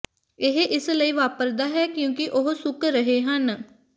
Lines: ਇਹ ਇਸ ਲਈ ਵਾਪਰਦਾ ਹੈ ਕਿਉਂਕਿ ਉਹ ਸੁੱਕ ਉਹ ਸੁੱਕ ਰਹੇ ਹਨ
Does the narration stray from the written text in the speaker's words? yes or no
yes